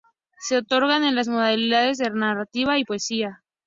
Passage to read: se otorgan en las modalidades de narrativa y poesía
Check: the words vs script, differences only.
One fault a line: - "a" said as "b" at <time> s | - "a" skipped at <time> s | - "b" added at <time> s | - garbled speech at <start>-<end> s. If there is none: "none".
none